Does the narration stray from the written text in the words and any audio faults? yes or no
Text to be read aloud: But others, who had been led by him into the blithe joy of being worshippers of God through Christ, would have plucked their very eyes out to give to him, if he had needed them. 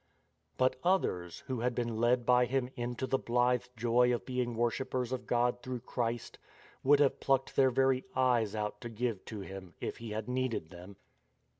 no